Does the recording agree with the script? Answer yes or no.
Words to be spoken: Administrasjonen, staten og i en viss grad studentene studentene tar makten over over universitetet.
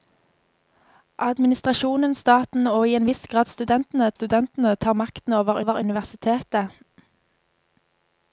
yes